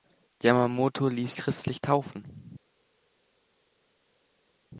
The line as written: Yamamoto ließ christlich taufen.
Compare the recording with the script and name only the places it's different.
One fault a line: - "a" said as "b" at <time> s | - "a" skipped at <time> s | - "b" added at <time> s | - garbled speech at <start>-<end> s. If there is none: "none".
none